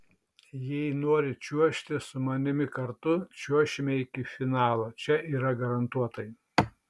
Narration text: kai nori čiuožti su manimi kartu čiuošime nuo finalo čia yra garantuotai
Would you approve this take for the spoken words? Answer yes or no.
no